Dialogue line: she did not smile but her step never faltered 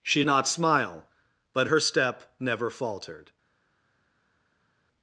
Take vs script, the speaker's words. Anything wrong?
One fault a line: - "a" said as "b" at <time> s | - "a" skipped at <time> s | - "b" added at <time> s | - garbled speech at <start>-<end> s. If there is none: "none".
- "did" skipped at 0.2 s